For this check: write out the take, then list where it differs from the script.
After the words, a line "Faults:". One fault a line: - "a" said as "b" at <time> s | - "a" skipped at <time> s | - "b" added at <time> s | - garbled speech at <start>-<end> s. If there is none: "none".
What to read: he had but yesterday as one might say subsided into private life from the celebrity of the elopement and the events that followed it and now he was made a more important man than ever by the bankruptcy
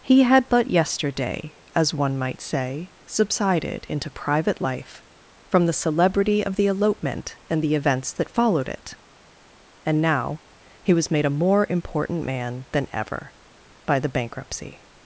he had but yesterday as one might say subsided into private life from the celebrity of the elopement and the events that followed it and now he was made a more important man than ever by the bankruptcy
Faults:
none